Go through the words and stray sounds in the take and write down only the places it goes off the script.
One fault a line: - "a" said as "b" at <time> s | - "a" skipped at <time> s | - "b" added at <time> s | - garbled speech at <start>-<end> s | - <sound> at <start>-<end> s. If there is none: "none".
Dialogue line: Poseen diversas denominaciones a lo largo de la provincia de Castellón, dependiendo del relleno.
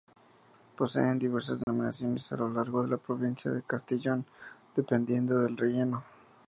- dropout at 1.6-1.7 s